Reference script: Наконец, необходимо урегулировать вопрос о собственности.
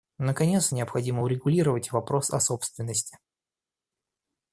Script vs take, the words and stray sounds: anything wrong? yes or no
no